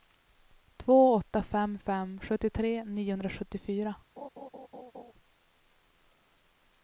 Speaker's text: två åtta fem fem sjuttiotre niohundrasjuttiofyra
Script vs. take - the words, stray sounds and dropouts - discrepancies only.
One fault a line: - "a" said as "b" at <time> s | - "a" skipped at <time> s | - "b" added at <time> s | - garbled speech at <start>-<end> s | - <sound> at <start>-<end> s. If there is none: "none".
- laugh at 4.2-5.1 s